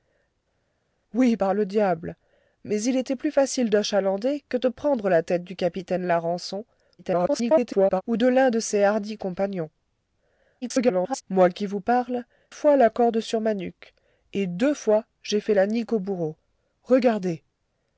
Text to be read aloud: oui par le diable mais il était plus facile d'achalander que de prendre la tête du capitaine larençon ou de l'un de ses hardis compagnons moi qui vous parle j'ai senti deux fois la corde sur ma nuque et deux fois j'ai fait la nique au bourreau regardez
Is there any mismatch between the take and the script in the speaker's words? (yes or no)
yes